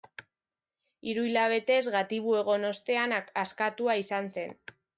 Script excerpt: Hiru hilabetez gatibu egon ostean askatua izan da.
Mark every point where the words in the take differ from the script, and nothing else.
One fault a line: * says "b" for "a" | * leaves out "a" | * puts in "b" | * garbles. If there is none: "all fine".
* says "zen" for "da"